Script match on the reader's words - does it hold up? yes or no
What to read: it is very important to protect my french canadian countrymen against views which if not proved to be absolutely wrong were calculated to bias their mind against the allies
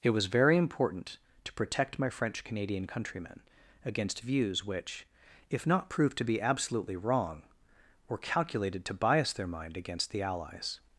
no